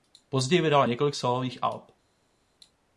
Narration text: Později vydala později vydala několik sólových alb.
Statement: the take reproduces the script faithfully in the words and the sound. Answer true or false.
false